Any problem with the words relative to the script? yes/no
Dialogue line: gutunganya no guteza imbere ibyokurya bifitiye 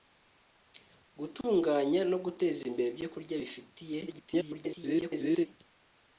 yes